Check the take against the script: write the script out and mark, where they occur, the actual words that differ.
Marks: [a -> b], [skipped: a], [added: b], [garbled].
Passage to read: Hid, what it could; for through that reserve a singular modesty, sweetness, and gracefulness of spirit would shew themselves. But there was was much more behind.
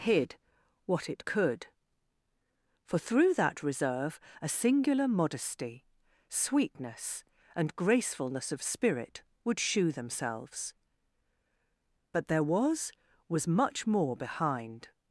Hid, what it could; for through that reserve a singular modesty, sweetness, and gracefulness of spirit would shew themselves. But there was was much more behind.